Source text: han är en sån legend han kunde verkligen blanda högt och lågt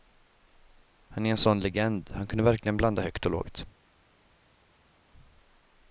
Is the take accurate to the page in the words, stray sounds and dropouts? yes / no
yes